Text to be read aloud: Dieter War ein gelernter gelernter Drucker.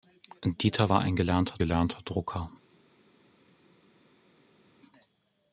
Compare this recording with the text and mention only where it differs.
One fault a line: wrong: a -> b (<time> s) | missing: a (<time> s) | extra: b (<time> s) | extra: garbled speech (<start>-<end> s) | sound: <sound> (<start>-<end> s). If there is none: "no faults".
no faults